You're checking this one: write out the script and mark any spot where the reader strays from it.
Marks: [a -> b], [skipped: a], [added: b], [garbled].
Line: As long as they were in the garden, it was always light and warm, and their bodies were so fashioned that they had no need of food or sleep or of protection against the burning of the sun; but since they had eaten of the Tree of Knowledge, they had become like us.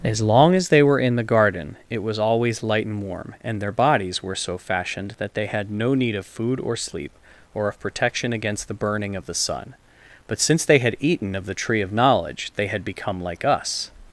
As long as they were in the garden, it was always light and warm, and their bodies were so fashioned that they had no need of food or sleep or of protection against the burning of the sun; but since they had eaten of the Tree of Knowledge, they had become like us.